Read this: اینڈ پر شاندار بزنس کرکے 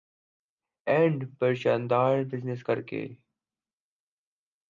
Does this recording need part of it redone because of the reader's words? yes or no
no